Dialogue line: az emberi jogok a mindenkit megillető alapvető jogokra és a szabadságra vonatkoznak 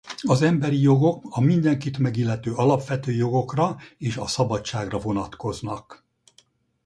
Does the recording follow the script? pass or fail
pass